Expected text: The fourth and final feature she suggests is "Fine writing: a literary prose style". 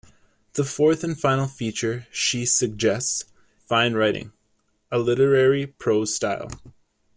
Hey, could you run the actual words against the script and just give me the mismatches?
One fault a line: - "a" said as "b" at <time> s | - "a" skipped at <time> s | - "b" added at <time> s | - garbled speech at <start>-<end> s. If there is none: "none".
- "is" skipped at 3.2 s